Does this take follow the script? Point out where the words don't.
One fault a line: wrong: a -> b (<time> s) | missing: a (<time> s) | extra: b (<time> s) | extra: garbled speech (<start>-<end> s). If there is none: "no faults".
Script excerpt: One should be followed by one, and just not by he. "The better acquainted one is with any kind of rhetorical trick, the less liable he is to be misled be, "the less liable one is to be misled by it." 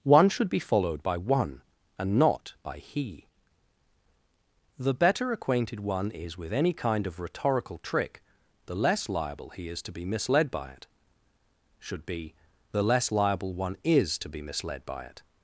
missing: just (2.2 s)
extra: by it Should (10.5 s)